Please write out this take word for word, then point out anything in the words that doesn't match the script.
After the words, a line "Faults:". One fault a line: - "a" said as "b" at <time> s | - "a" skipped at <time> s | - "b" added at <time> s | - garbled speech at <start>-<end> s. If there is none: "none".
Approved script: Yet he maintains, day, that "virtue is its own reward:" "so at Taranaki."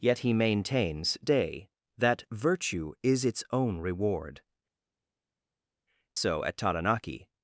Yet he maintains, day, that "virtue is its own reward:" "so at Taranaki."
Faults:
none